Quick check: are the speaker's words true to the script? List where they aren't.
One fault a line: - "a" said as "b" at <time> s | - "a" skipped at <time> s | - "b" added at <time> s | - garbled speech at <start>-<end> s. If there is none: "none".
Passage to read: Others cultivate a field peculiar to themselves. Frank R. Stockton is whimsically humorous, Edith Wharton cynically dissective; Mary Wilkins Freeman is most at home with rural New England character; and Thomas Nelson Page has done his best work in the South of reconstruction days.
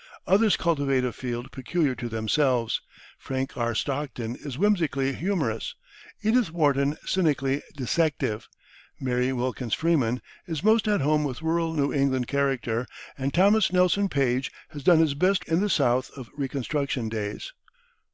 - "work" skipped at 15.4 s